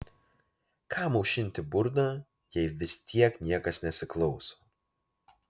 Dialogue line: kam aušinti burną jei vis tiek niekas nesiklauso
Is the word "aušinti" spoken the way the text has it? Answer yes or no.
yes